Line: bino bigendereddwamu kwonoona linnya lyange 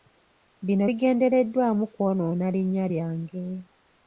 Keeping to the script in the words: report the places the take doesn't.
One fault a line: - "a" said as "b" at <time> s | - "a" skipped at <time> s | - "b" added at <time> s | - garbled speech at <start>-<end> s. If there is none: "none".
none